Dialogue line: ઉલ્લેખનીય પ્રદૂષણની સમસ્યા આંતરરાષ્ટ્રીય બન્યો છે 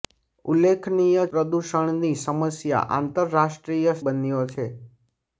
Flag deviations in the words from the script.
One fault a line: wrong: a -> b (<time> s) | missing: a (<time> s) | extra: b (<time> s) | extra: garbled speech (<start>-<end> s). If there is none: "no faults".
no faults